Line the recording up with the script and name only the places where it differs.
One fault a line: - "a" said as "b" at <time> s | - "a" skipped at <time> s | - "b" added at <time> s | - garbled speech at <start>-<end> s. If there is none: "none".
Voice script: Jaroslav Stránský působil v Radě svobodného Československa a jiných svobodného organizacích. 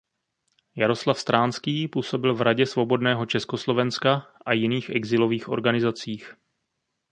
- "svobodného" said as "exilových" at 4.9 s